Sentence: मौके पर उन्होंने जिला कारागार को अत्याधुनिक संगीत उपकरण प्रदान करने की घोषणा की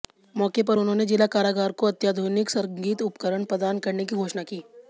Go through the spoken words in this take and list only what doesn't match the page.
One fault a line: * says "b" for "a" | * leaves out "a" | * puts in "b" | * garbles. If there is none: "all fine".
all fine